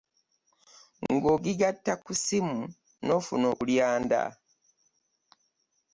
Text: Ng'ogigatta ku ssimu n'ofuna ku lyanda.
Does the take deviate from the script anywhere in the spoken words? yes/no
no